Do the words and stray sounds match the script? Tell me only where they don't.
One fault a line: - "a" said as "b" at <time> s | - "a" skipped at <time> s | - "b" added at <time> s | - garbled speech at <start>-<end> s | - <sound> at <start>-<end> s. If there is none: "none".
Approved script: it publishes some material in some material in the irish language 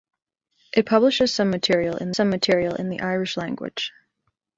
none